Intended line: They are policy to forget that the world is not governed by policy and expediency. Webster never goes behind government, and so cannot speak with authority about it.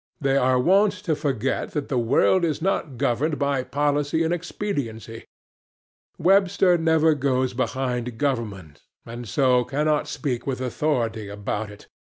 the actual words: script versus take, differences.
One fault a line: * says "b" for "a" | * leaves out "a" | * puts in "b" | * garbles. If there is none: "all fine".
* says "wont" for "policy"